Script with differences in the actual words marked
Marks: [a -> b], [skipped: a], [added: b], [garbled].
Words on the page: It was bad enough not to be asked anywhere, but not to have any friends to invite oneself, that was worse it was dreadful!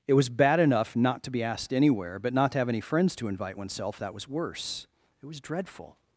It was bad enough not to be asked anywhere, but not to have any friends to invite oneself, that was worse it was dreadful!